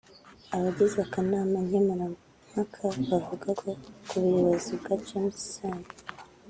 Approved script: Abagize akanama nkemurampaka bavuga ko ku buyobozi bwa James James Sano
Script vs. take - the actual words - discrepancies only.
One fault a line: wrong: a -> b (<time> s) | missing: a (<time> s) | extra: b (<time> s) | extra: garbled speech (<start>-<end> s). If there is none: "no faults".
missing: James (5.4 s)